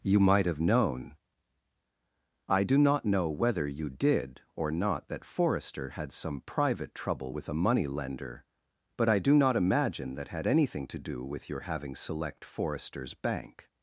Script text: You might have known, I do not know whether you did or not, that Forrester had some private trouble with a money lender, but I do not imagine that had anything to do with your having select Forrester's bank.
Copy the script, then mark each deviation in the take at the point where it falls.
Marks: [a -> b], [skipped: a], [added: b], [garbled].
You might have known, I do not know whether you did or not, that Forrester had some private trouble with a money lender, but I do not imagine that had anything to do with your having select Forrester's bank.